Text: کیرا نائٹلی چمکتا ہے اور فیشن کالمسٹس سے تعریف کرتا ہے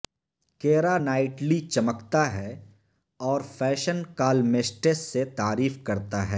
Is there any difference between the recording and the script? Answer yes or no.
no